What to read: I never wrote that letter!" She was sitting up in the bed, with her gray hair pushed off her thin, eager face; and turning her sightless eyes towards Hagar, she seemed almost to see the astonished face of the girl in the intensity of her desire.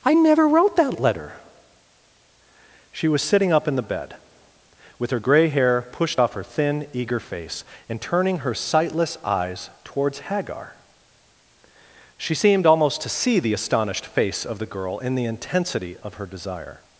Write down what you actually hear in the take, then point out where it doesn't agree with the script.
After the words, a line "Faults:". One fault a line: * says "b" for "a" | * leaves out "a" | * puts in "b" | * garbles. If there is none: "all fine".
I never wrote that letter!" She was sitting up in the bed, with her gray hair pushed off her thin, eager face; and turning her sightless eyes towards Hagar, she seemed almost to see the astonished face of the girl in the intensity of her desire.
Faults:
all fine